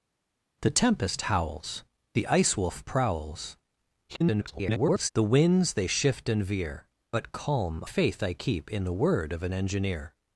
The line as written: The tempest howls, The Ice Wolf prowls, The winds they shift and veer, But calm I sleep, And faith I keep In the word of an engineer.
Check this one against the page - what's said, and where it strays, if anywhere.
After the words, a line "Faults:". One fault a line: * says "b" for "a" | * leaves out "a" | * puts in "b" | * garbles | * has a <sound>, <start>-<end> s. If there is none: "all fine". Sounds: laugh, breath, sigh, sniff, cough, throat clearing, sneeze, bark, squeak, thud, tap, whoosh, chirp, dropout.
The tempest howls, The Ice Wolf prowls, [garbled] The winds they shift and veer, But calm faith I keep In the word of an engineer.
Faults:
* garbles
* leaves out "I sleep And"